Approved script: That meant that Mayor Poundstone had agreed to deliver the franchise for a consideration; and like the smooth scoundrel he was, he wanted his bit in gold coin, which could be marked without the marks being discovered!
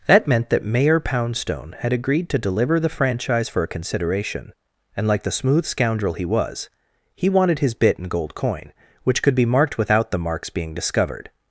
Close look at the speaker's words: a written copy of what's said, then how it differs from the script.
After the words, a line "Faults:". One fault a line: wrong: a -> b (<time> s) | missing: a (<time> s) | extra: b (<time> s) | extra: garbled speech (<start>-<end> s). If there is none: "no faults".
That meant that Mayor Poundstone had agreed to deliver the franchise for a consideration; and like the smooth scoundrel he was, he wanted his bit in gold coin, which could be marked without the marks being discovered!
Faults:
no faults